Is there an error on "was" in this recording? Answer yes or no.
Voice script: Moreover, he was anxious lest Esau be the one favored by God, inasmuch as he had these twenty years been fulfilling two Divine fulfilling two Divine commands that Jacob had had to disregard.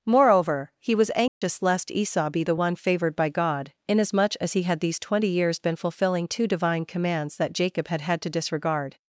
no